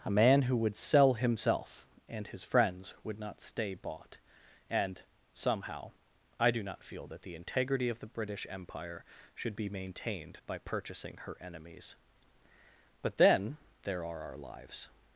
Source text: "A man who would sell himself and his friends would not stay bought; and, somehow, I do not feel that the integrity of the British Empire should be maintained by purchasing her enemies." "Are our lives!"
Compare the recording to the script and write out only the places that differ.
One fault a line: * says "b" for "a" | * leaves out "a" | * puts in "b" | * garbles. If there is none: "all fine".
* puts in "But then there"